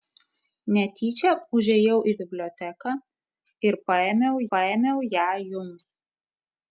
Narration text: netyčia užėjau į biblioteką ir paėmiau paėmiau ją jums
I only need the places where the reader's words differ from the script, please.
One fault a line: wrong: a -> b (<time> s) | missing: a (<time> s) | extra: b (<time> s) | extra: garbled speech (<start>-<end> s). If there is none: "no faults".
no faults